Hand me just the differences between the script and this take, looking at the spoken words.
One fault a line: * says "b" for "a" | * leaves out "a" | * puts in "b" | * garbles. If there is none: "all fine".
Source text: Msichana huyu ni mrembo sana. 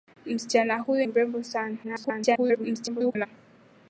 * leaves out "ni"
* garbles